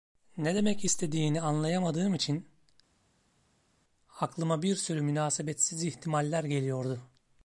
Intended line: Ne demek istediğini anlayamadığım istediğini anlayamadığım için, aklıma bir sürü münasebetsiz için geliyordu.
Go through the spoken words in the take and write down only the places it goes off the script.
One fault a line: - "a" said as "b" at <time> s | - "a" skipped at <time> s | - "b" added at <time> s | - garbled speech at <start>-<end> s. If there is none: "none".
- "istediğini anlayamadığım" skipped at 2.1 s
- "için" said as "ihtimaller" at 5.8 s